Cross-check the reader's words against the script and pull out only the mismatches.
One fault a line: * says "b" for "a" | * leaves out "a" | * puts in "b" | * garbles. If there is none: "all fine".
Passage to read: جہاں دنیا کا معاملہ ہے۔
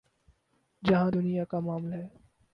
all fine